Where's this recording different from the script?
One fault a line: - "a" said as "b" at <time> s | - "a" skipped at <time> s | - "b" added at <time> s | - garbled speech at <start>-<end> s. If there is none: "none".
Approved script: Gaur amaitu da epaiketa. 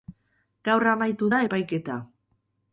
none